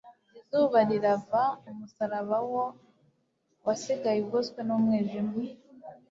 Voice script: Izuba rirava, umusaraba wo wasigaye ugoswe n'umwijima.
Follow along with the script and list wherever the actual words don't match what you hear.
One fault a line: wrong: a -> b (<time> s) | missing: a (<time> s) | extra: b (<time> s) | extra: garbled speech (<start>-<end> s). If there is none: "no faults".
no faults